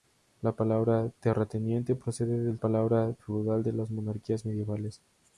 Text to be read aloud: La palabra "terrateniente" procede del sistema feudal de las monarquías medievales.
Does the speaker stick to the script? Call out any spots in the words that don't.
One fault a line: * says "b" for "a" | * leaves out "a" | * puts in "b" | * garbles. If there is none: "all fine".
* says "palabra" for "sistema"